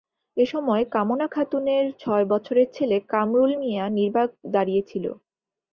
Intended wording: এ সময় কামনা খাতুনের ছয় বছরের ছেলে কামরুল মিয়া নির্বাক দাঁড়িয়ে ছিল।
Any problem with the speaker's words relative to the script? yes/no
no